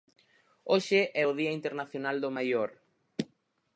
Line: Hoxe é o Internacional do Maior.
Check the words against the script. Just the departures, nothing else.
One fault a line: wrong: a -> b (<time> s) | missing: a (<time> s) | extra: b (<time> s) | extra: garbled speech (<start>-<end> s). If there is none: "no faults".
extra: Día (1.4 s)